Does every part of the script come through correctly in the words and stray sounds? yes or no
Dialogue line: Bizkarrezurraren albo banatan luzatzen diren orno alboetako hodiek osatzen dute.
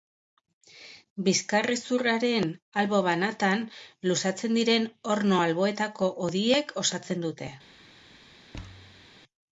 no